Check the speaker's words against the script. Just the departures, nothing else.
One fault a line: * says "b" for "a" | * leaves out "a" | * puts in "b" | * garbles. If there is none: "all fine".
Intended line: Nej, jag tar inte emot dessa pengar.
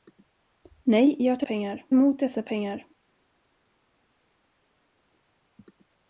* says "pengar" for "inte"